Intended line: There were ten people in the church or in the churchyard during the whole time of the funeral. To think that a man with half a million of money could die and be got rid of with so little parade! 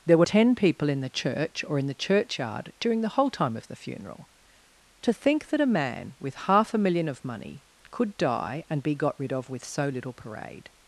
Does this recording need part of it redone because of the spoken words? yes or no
no